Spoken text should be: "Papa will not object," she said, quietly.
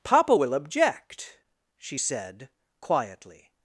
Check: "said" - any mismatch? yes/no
no